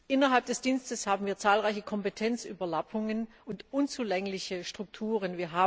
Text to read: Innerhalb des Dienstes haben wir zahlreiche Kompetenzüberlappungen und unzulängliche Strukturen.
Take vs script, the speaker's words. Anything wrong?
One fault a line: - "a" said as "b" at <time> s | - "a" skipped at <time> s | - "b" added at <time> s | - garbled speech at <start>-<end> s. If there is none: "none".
none